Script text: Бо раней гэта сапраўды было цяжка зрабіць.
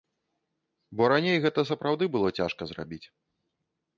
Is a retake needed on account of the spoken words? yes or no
no